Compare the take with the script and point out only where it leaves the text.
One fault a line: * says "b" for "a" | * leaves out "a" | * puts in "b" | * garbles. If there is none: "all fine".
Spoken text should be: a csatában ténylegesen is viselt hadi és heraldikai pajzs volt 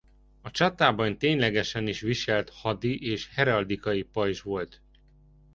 all fine